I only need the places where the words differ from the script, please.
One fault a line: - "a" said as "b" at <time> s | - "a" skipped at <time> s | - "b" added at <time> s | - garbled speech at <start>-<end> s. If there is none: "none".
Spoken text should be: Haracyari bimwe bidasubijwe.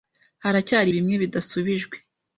none